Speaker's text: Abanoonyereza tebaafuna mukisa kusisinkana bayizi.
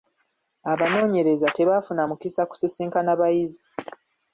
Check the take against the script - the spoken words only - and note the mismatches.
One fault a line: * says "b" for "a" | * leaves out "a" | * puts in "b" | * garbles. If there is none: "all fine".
all fine